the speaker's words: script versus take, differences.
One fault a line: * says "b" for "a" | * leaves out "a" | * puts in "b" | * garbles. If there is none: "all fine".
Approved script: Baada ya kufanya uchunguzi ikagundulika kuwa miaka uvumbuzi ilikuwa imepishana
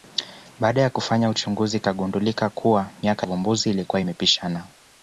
all fine